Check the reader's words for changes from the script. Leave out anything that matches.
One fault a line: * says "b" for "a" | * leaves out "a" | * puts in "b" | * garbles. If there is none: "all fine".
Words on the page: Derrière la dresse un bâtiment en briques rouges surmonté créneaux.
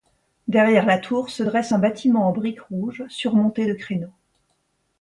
* puts in "tour se"
* puts in "de"